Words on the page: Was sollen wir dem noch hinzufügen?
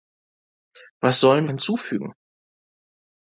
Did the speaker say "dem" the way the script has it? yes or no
no